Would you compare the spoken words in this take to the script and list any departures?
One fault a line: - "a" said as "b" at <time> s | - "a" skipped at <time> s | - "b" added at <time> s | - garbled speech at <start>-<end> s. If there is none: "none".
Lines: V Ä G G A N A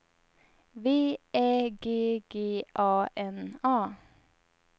none